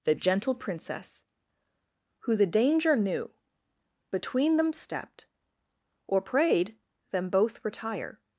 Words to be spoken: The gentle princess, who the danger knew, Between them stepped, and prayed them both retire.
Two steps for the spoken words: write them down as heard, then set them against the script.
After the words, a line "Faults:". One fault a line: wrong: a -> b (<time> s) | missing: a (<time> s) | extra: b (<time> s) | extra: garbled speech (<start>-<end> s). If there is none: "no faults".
The gentle princess, who the danger knew, Between them stepped, or prayed them both retire.
Faults:
wrong: and -> or (6.1 s)